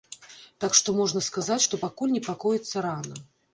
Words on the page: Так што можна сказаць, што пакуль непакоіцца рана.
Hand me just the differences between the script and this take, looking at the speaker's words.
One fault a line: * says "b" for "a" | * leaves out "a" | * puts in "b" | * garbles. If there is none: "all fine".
all fine